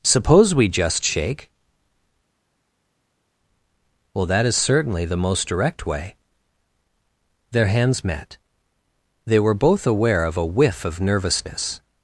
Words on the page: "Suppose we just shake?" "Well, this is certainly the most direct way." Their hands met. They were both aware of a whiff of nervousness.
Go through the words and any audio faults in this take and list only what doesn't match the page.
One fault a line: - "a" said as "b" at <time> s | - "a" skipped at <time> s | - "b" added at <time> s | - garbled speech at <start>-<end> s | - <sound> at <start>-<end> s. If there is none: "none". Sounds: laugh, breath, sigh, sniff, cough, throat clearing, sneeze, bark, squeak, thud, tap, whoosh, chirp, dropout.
- "this" said as "that" at 4.3 s